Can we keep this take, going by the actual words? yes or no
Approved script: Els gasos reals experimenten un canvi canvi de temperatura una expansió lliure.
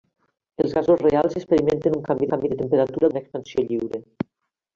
yes